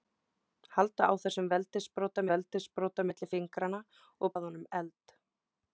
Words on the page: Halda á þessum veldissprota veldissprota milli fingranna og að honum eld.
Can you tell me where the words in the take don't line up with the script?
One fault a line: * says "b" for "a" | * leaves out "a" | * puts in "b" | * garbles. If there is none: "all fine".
all fine